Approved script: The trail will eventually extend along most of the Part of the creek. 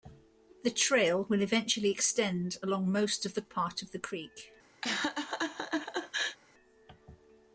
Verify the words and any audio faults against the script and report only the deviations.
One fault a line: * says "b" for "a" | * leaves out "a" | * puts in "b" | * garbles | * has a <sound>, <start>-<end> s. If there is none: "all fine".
* has a laugh, 4.8-6.4 s